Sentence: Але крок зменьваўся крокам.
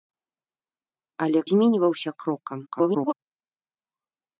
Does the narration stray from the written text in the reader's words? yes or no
yes